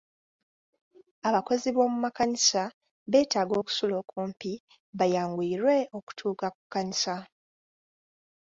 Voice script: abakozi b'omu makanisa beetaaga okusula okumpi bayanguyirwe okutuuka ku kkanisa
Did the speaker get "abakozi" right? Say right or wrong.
right